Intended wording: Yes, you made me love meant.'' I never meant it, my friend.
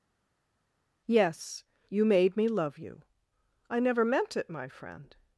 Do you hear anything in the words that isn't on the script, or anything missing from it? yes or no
yes